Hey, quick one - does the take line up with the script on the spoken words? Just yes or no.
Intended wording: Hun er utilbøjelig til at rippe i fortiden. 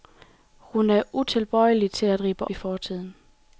yes